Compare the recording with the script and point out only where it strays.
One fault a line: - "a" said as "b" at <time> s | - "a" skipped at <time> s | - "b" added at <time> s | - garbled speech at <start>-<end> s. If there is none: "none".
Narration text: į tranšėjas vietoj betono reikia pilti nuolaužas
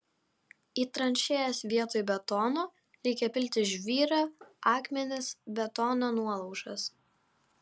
- "žvyrą akmenis betono" added at 3.7 s